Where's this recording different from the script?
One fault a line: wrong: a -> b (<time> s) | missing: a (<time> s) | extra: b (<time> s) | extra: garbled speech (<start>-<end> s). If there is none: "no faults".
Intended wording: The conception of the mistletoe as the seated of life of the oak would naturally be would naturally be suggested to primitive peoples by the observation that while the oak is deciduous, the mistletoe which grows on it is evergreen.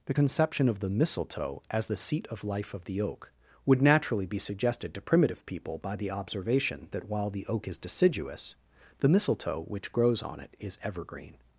wrong: seated -> seat (2.0 s)
missing: would naturally be (4.4 s)
wrong: peoples -> people (5.5 s)